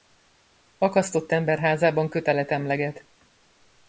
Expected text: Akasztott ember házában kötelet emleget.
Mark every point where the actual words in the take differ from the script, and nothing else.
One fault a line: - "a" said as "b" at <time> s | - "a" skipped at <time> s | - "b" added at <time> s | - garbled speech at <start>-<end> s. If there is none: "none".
none